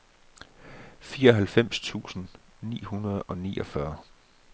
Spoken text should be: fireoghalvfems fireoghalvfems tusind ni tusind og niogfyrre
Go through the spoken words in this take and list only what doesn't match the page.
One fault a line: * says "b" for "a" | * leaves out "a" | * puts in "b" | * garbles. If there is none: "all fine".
* leaves out "fireoghalvfems"
* says "hundrede" for "tusind"